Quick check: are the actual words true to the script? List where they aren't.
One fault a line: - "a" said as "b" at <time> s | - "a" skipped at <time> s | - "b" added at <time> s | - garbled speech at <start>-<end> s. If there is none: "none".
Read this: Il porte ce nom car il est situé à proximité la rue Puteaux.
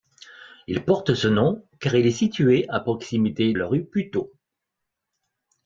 none